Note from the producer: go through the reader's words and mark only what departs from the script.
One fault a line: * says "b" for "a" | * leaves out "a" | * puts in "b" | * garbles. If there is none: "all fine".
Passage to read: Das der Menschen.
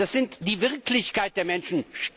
* puts in "ist die Wirklichkeit"